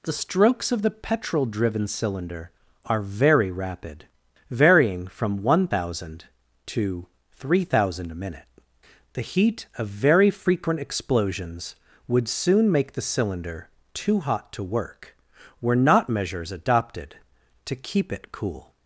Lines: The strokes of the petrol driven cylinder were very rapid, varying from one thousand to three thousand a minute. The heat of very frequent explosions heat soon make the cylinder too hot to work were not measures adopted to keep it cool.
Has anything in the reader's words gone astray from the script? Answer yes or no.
yes